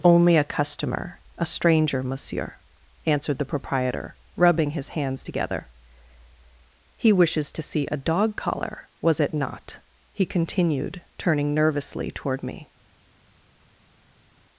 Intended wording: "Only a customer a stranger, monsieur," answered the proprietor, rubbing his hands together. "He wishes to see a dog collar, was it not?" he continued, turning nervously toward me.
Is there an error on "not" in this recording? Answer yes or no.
no